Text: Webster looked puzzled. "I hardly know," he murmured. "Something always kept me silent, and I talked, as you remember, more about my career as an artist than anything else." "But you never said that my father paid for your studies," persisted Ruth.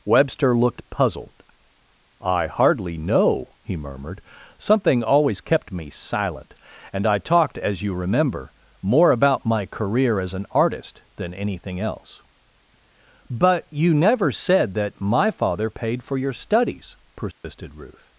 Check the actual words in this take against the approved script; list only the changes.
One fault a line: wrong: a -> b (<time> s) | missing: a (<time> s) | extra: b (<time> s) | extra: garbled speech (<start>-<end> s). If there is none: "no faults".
no faults